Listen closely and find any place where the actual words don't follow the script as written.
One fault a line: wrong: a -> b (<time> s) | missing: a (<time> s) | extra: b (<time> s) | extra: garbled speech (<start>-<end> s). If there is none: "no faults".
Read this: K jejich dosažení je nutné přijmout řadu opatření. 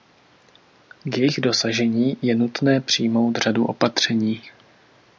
no faults